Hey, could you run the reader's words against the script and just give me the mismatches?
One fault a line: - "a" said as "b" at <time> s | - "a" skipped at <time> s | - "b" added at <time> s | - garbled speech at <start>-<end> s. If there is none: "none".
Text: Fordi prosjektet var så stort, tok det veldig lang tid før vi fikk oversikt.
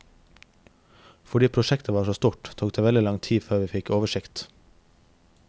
none